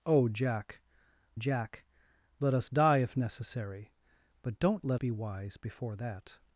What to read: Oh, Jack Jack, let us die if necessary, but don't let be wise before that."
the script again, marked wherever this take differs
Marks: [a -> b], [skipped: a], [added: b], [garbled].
Oh, Jack Jack, let us die if necessary, but don't let be wise before that."